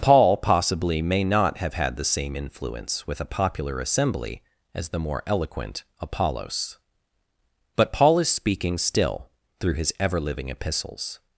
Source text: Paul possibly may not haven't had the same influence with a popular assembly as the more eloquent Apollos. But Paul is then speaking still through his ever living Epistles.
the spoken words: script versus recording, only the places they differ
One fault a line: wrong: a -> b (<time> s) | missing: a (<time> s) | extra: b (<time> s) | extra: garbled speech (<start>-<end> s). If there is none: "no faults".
wrong: haven't -> have (1.6 s)
missing: then (8.3 s)